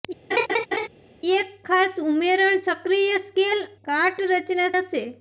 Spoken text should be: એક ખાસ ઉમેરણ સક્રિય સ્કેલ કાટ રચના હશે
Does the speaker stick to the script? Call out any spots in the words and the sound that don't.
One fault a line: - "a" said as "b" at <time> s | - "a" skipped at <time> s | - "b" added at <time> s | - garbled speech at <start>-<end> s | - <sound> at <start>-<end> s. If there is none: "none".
- laugh at 0.3-0.9 s